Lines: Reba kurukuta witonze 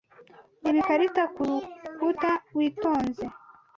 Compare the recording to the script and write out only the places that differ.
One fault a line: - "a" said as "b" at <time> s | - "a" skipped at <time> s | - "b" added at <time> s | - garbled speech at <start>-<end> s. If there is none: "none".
- "ikarita" added at 0.8 s